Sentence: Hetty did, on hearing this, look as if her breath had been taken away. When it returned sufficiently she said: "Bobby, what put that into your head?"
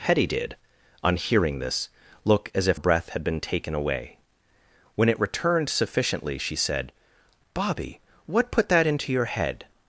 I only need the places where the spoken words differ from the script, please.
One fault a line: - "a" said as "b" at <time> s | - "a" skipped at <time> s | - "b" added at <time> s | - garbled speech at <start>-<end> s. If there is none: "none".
- "her" skipped at 2.8 s